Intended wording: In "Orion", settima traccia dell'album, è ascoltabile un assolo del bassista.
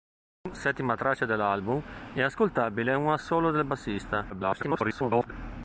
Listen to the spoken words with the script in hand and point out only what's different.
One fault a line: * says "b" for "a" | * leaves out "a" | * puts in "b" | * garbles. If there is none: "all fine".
* leaves out "Orion"
* garbles